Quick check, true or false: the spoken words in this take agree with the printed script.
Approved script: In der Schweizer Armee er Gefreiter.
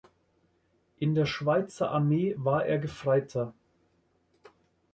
false